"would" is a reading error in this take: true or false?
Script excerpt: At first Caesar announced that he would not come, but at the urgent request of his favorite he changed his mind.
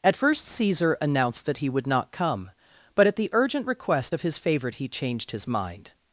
false